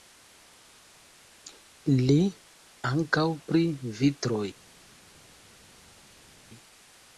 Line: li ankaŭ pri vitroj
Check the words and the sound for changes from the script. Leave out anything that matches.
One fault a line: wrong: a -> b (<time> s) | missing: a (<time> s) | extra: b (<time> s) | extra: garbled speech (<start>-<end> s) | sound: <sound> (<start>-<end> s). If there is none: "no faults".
no faults